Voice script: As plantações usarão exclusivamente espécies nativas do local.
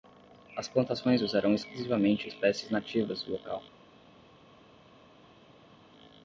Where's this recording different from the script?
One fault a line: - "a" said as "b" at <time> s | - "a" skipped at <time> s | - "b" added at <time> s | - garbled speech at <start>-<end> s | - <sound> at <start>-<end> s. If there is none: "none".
none